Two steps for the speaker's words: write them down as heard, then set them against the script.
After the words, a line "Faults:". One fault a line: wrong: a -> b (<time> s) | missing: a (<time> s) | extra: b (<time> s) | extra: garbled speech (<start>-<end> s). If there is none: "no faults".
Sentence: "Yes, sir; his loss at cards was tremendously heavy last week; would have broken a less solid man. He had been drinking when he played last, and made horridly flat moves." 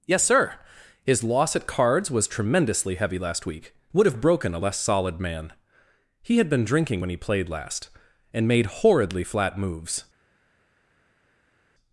"Yes, sir; his loss at cards was tremendously heavy last week; would have broken a less solid man. He had been drinking when he played last, and made horridly flat moves."
Faults:
no faults